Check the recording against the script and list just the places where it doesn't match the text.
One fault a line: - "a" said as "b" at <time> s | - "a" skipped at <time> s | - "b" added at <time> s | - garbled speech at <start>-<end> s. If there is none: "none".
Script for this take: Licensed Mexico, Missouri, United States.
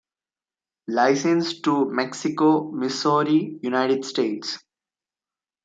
- "to" added at 1.6 s